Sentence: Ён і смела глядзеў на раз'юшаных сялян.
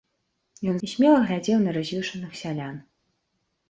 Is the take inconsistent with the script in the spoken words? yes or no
no